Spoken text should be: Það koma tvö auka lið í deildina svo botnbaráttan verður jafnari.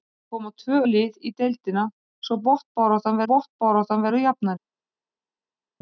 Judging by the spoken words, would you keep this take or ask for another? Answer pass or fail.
fail